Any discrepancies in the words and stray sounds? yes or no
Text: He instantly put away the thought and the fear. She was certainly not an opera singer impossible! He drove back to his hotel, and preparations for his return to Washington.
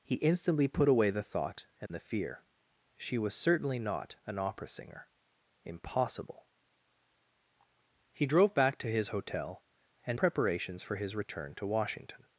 yes